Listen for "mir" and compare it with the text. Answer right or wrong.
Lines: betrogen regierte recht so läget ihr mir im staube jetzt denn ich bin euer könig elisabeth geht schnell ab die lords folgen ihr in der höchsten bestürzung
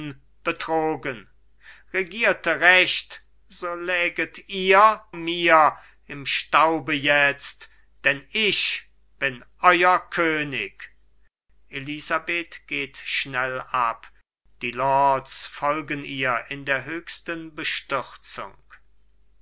right